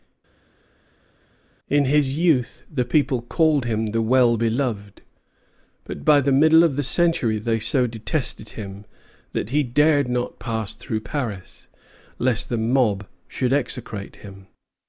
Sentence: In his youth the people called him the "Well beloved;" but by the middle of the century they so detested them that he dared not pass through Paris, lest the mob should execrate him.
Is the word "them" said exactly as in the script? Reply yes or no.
no